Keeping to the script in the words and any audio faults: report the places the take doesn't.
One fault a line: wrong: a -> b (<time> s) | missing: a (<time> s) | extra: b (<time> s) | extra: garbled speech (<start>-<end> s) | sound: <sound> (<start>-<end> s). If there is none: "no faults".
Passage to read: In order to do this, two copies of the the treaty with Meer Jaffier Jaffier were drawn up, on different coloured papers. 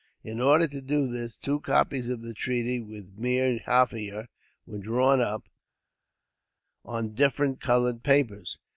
missing: the (2.3 s)
missing: Jaffier (4.3 s)